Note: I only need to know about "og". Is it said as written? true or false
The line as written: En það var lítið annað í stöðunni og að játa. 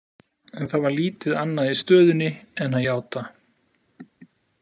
false